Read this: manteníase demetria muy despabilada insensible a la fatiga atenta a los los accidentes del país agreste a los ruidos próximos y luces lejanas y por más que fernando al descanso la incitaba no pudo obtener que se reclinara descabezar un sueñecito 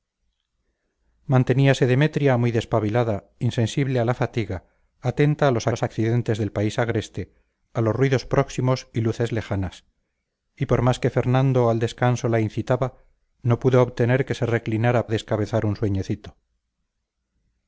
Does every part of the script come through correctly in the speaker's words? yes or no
yes